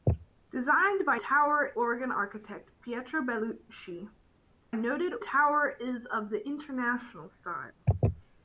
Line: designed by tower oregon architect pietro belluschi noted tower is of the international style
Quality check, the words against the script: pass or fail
pass